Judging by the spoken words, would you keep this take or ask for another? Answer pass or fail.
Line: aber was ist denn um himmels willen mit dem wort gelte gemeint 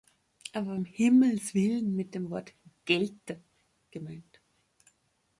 fail